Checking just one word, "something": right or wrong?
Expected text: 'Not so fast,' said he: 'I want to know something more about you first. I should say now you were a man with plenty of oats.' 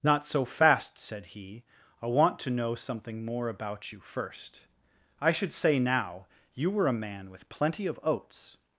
right